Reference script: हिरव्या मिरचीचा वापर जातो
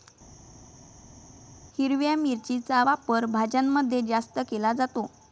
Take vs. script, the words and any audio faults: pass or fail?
fail